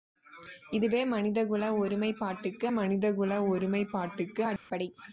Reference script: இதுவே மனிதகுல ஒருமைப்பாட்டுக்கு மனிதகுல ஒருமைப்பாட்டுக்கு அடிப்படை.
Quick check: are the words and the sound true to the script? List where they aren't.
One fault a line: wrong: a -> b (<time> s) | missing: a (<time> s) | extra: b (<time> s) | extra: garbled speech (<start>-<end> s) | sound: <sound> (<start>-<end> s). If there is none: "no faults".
sound: dropout (4.6-4.7 s)